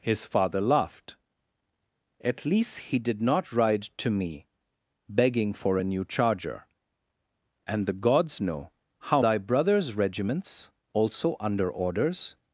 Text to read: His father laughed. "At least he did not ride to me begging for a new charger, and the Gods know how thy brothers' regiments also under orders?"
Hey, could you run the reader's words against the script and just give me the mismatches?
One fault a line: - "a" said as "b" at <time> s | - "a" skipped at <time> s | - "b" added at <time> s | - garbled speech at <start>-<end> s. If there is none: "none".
none